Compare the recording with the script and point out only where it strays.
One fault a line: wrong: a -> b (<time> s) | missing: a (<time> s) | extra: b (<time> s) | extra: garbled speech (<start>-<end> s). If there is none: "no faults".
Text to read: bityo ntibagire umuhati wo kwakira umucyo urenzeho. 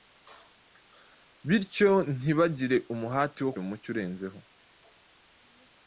missing: kwakira (3.5 s)